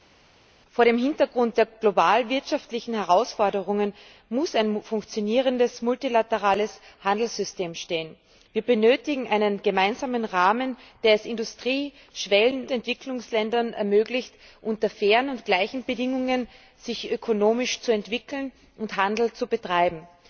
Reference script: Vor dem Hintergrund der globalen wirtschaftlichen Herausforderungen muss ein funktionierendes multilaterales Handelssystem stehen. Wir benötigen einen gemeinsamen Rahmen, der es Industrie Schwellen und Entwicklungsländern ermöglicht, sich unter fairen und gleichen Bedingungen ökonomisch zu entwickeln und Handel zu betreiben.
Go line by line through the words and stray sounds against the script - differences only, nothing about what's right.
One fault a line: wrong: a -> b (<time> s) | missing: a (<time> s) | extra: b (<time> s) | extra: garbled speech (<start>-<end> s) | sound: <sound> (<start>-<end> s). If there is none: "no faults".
missing: und (12.7 s)